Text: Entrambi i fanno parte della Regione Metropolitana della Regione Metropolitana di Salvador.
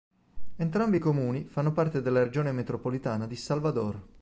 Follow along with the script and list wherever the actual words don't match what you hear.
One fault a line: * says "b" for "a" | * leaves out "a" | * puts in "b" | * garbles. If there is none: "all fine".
* puts in "comuni"
* leaves out "della Regione Metropolitana"